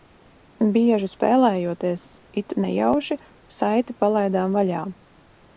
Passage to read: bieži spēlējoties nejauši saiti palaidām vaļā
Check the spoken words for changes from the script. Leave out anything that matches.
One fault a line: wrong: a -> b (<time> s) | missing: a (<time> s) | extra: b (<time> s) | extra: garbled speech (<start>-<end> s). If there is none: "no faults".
extra: it (2.4 s)